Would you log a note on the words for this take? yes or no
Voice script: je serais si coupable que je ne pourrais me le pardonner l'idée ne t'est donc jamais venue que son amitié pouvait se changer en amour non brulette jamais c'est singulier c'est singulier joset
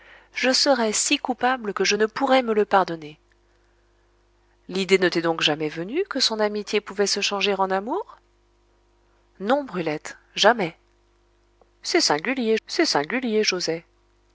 no